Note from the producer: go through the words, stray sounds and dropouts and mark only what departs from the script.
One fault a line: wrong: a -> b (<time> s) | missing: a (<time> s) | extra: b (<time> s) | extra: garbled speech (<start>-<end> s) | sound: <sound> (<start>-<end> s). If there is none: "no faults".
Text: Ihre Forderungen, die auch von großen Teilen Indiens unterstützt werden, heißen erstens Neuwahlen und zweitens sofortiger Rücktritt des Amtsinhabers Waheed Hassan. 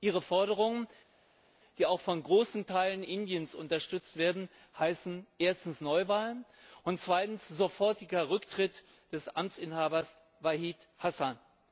no faults